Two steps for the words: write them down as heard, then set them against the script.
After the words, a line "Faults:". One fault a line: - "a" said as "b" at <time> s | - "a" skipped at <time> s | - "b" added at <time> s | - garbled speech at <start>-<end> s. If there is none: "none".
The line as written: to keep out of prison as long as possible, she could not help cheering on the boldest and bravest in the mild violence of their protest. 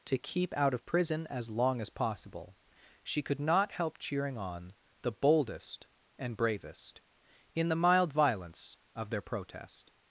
to keep out of prison as long as possible, she could not help cheering on the boldest and bravest in the mild violence of their protest.
Faults:
none